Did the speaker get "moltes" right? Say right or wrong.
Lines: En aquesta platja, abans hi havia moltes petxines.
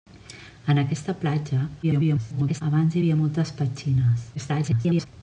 right